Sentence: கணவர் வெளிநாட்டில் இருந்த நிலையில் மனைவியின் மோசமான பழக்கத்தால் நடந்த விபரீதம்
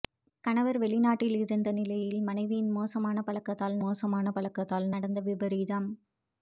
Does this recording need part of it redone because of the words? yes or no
yes